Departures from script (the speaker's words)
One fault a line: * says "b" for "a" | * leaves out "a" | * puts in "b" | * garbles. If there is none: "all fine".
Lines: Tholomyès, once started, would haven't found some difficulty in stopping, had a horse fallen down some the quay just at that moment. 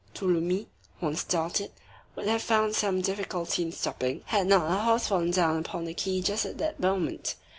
* says "have" for "haven't"
* puts in "not"
* says "upon" for "some"